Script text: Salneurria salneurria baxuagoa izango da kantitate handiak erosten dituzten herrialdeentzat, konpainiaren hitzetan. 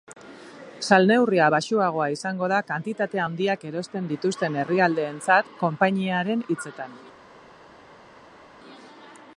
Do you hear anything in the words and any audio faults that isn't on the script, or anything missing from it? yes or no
yes